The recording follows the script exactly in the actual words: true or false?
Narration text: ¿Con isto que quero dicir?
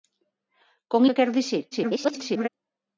false